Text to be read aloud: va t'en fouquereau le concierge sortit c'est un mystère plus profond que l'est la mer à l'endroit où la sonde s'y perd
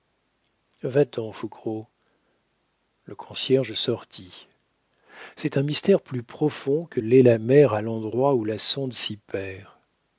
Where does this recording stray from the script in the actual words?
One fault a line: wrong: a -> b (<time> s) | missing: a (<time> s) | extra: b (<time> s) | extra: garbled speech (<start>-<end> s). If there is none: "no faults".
no faults